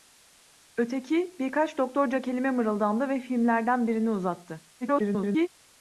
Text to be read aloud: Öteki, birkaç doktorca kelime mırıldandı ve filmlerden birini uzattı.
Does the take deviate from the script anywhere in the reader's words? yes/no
yes